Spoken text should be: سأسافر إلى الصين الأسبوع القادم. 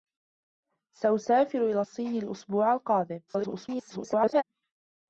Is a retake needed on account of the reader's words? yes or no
yes